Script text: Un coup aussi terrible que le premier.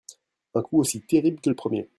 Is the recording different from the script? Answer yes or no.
no